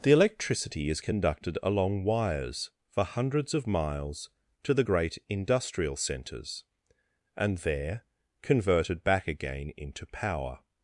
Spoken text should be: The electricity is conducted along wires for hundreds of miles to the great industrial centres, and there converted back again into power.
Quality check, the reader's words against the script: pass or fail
pass